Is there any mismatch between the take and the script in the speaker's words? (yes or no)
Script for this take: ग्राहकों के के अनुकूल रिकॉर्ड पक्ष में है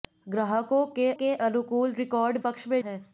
no